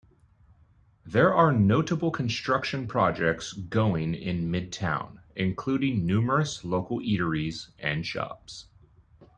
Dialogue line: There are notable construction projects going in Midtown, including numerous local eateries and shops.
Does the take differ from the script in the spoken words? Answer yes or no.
no